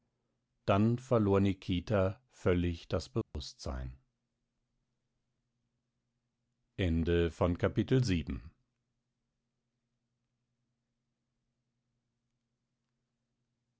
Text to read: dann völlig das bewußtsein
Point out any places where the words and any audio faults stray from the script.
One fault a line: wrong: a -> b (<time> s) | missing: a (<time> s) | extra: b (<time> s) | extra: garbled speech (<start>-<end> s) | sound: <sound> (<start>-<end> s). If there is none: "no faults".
extra: verlor nikita (1.0 s)
sound: dropout (3.2-3.3 s)